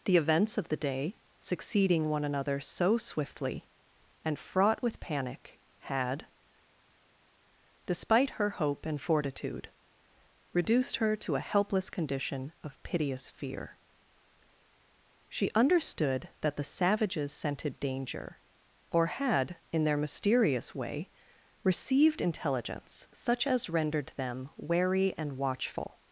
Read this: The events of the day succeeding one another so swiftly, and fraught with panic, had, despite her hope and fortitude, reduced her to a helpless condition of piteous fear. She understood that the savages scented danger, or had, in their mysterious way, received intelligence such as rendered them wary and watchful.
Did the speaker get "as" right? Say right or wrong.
right